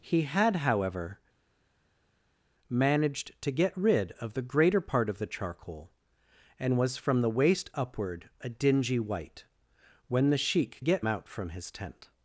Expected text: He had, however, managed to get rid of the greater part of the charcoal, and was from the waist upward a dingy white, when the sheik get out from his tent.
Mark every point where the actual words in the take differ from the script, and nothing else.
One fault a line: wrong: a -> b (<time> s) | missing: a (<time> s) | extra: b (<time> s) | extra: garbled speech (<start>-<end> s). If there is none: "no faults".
no faults